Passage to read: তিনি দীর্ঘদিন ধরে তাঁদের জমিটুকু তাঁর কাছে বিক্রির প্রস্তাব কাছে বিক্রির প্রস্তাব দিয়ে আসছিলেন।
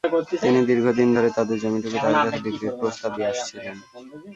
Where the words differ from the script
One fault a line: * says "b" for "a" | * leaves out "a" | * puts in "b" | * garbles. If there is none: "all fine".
* leaves out "কাছে বিক্রির প্রস্তাব"